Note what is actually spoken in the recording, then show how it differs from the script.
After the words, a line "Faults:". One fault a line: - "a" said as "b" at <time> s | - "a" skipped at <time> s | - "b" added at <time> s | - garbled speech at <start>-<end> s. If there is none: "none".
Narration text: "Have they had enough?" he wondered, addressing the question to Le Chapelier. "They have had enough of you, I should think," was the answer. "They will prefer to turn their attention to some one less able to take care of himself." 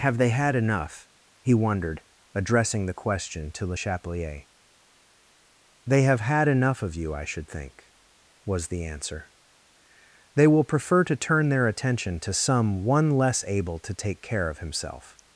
"Have they had enough?" he wondered, addressing the question to Le Chapelier. "They have had enough of you, I should think," was the answer. "They will prefer to turn their attention to some one less able to take care of himself."
Faults:
none